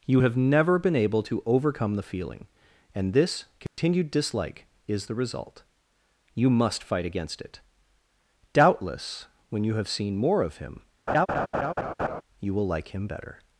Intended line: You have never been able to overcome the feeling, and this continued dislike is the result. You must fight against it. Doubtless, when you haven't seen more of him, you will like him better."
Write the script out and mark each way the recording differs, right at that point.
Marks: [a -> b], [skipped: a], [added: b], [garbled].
You have never been able to overcome the feeling, and this continued dislike is the result. You must fight against it. Doubtless, when you [haven't -> have] seen more of him, you will like him better."